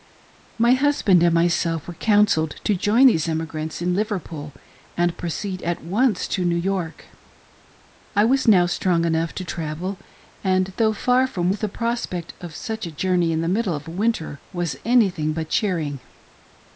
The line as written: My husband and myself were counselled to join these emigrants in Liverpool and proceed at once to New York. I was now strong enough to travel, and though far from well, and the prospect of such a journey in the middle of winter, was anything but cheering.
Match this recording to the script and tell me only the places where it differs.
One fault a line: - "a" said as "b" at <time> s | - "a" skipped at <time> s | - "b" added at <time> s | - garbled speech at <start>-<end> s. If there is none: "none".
- "well and" skipped at 11.5 s